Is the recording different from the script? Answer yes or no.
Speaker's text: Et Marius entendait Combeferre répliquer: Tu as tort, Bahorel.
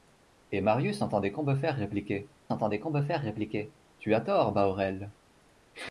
yes